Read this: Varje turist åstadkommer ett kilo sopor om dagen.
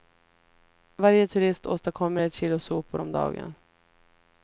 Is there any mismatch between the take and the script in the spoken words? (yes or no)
no